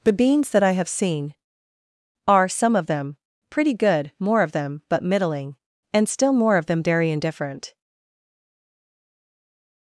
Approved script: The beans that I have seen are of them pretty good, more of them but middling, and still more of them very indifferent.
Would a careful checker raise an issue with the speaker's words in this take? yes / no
yes